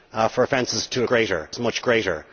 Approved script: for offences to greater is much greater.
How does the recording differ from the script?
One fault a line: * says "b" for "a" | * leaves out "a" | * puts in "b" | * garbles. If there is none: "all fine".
all fine